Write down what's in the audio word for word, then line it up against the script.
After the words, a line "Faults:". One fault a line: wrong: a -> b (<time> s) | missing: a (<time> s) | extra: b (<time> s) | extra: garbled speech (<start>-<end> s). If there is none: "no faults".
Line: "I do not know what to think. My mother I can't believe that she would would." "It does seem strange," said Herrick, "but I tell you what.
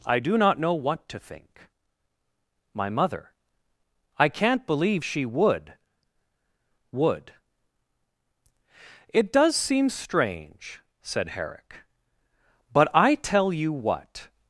"I do not know what to think. My mother I can't believe she would would." "It does seem strange," said Herrick, "but I tell you what.
Faults:
missing: that (5.0 s)